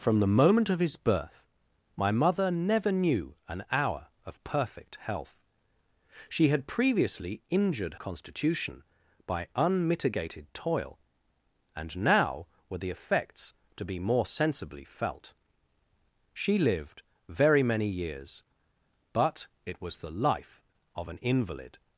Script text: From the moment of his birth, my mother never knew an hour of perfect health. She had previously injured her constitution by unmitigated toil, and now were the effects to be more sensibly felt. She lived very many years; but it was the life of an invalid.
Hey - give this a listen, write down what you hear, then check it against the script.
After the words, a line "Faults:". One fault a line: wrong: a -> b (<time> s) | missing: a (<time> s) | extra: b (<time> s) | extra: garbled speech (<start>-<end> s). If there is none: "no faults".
From the moment of his birth, my mother never knew an hour of perfect health. She had previously injured constitution by unmitigated toil, and now were the effects to be more sensibly felt. She lived very many years; but it was the life of an invalid.
Faults:
missing: her (8.0 s)